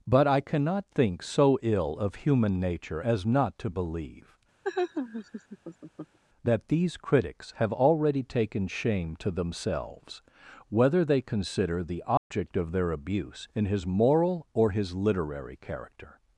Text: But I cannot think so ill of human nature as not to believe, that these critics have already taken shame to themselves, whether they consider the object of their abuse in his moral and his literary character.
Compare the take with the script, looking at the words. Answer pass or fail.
fail